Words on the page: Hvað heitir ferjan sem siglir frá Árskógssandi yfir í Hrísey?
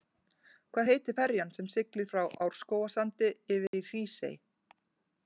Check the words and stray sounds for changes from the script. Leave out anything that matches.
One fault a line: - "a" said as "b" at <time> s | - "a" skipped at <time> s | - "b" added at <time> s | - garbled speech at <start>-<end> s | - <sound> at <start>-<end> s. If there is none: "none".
- dropout at 3.7-3.7 s